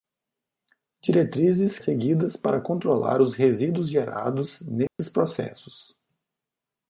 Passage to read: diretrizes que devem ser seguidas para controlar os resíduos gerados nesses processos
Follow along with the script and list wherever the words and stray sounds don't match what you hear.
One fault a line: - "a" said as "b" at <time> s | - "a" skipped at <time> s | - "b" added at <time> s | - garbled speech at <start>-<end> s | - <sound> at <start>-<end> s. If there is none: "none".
- "que devem ser" skipped at 1.8 s
- dropout at 4.9-5.0 s